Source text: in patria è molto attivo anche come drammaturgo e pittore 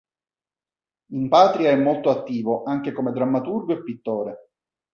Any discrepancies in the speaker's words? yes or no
no